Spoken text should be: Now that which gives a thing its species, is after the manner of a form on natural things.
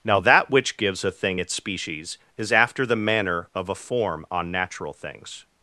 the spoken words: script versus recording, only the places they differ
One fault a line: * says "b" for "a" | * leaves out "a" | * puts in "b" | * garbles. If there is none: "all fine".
all fine